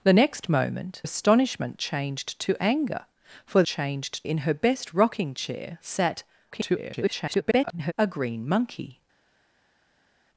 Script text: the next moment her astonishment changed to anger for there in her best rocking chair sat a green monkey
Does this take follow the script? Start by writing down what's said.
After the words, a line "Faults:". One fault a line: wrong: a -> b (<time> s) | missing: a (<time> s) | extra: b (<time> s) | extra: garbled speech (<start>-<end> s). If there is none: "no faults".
the next moment astonishment changed to anger for changed in her best rocking chair sat [garbled] a green monkey
Faults:
missing: her (1.0 s)
wrong: there -> changed (3.6 s)
extra: garbled speech (6.5-7.9 s)